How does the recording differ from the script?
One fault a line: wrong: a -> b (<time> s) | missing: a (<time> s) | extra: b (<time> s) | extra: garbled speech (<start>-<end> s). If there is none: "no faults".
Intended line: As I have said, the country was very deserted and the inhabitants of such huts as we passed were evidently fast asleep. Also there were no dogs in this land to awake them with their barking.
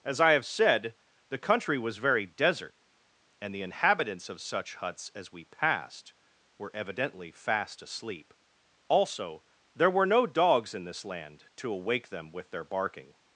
wrong: deserted -> desert (2.2 s)